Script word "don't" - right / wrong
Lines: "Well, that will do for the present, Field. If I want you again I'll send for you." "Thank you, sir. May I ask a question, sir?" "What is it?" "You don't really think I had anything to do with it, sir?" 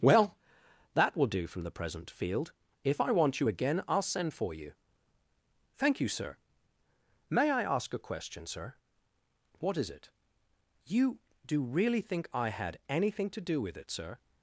wrong